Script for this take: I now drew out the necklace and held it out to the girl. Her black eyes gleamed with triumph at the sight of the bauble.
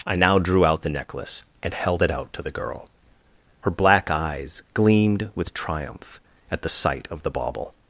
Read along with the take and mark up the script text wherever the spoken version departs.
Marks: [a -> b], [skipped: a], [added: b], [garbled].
I now drew out the necklace and held it out to the girl. Her black eyes gleamed with triumph at the sight of the bauble.